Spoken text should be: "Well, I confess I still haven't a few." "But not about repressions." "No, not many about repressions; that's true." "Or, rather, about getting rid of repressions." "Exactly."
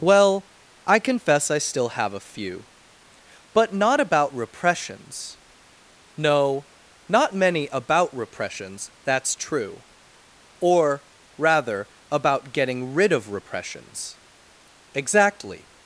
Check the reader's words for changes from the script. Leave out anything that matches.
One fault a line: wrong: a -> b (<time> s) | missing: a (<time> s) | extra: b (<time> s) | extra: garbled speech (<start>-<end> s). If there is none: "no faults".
wrong: haven't -> have (1.9 s)